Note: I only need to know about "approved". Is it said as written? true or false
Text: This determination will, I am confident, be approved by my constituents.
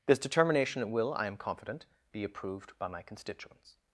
true